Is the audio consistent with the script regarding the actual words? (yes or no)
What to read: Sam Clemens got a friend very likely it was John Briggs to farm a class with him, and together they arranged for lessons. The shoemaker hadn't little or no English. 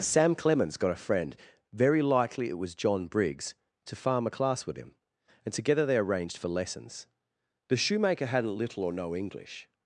yes